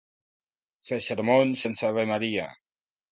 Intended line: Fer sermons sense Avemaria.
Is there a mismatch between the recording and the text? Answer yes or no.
no